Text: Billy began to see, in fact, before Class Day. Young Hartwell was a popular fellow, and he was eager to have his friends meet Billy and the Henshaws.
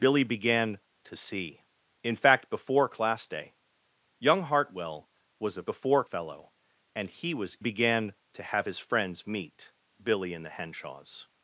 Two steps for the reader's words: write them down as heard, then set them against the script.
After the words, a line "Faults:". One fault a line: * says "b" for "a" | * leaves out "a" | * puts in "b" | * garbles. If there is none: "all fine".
Billy began to see, in fact, before Class Day. Young Hartwell was a before fellow, and he was began to have his friends meet Billy and the Henshaws.
Faults:
* says "before" for "popular"
* says "began" for "eager"